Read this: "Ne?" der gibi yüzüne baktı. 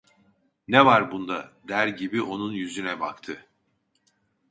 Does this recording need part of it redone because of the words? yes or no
yes